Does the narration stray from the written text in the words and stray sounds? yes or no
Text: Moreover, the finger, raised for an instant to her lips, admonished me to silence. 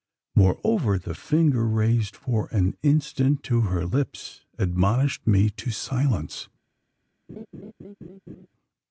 yes